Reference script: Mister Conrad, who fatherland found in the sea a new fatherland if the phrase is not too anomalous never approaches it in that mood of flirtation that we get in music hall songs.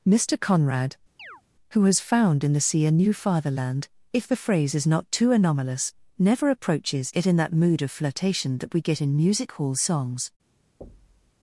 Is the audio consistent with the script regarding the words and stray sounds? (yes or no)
no